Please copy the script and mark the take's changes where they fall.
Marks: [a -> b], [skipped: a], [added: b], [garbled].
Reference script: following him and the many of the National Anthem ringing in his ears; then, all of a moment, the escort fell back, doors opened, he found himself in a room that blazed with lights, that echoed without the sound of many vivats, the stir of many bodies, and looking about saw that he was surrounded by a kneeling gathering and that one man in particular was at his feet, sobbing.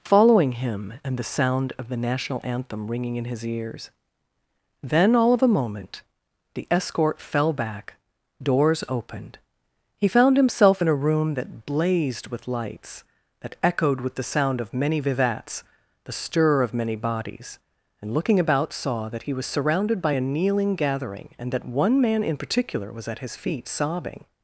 following him and the [many -> sound] of the National Anthem ringing in his ears; then, all of a moment, the escort fell back, doors opened, he found himself in a room that blazed with lights, that echoed [without -> with] the sound of many vivats, the stir of many bodies, and looking about saw that he was surrounded by a kneeling gathering and that one man in particular was at his feet, sobbing.